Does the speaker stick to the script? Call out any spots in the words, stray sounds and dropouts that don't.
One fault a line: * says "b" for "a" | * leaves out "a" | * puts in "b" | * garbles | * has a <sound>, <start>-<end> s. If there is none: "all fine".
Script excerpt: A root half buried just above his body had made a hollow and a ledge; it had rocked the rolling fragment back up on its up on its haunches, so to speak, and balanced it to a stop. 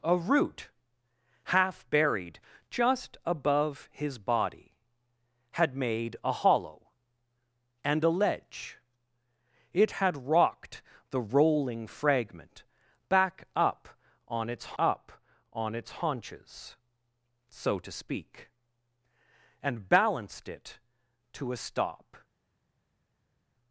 all fine